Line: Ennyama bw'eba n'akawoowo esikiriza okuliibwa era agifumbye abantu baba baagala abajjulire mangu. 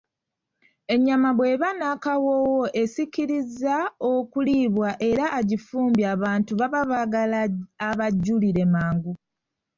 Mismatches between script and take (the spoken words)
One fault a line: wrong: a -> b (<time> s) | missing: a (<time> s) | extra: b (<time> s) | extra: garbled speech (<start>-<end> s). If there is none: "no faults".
no faults